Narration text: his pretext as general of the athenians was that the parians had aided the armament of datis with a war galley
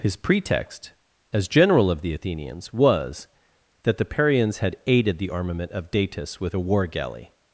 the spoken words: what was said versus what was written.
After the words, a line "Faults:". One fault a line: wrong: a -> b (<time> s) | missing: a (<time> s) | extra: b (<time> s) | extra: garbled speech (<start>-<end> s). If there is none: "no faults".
his pretext as general of the athenians was that the parians had aided the armament of datis with a war galley
Faults:
no faults